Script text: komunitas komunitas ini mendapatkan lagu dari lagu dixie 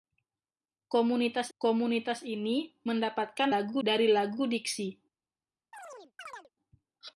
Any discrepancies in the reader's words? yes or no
no